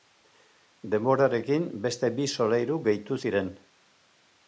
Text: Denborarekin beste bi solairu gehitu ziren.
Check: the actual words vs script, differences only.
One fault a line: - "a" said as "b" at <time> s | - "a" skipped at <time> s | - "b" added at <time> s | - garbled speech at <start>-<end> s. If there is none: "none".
none